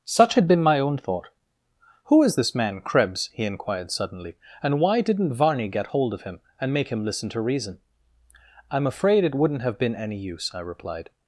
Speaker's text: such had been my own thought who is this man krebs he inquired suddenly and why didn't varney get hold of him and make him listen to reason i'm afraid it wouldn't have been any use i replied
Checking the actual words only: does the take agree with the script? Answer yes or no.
yes